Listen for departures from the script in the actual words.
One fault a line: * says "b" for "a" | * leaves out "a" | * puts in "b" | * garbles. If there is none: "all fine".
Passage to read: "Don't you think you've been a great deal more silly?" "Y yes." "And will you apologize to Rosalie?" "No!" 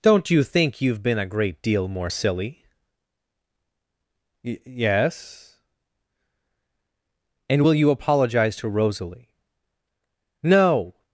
all fine